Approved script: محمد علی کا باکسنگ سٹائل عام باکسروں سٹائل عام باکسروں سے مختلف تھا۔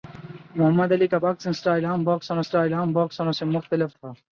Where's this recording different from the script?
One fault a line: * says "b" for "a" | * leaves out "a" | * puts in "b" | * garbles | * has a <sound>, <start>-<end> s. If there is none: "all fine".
all fine